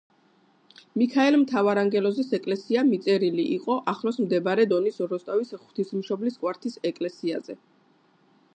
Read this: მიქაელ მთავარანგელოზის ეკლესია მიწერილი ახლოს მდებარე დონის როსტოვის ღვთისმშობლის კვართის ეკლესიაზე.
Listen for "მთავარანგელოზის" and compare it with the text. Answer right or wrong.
right